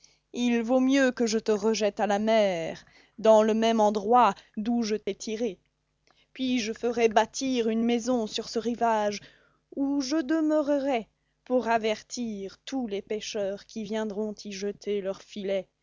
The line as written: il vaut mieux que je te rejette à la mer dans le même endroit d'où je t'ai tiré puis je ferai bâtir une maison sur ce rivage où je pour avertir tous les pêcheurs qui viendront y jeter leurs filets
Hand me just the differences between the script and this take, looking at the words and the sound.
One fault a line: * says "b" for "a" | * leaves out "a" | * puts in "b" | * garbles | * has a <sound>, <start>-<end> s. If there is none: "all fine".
* has a dropout, 5.0-5.1 s
* puts in "demeurerai"